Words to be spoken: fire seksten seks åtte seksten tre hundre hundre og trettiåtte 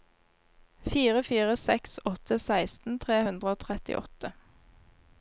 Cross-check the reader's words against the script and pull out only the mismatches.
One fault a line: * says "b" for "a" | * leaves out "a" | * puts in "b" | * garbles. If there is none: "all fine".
* says "fire" for "seksten"
* leaves out "hundre"